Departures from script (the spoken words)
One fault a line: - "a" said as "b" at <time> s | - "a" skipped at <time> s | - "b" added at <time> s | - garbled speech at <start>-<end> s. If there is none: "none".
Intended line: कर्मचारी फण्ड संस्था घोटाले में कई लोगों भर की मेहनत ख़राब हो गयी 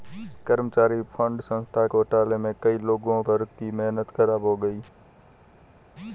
none